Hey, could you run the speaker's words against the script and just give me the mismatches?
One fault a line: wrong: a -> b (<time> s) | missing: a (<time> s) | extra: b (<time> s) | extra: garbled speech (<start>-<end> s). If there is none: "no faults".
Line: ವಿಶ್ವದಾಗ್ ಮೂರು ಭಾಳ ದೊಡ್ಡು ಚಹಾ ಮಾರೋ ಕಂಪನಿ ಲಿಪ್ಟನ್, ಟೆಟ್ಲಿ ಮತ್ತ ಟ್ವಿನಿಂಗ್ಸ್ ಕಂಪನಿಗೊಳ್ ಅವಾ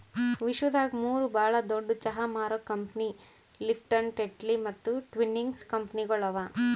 no faults